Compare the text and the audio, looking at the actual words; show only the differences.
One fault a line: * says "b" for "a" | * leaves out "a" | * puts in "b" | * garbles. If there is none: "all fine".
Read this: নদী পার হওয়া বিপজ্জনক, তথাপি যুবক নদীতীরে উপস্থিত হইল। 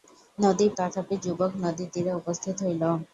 * leaves out "পার হওয়া বিপজ্জনক"